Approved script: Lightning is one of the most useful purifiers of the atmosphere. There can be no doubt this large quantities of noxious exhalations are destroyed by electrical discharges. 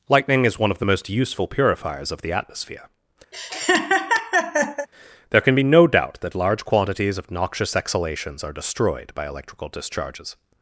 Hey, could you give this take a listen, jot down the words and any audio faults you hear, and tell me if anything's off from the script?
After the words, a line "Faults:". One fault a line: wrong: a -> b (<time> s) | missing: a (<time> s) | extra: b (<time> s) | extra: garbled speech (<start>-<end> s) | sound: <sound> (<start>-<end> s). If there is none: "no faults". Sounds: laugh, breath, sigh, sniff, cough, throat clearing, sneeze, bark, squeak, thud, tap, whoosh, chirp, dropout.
Lightning is one of the most useful purifiers of the atmosphere. There can be no doubt that large quantities of noxious exhalations are destroyed by electrical discharges.
Faults:
sound: laugh (3.3-4.9 s)
wrong: this -> that (6.2 s)